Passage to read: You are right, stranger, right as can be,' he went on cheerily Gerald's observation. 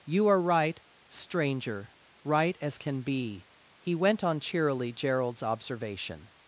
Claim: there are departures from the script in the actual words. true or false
false